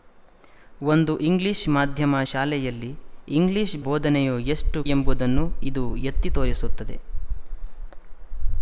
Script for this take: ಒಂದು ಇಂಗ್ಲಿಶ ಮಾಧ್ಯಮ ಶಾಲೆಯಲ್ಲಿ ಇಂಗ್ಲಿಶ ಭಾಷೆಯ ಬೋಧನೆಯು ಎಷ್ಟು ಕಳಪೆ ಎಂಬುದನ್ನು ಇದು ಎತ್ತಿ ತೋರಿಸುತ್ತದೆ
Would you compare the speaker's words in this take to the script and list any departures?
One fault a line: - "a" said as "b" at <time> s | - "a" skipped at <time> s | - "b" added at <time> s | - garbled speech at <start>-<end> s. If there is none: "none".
- "ಭಾಷೆಯ" skipped at 3.8 s
- "ಕಳಪೆ" skipped at 4.8 s